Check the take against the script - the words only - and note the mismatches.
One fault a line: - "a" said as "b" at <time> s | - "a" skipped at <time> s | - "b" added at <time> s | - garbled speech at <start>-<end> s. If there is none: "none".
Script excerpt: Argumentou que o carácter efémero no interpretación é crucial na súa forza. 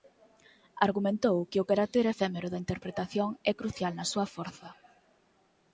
- "no" said as "da" at 2.5 s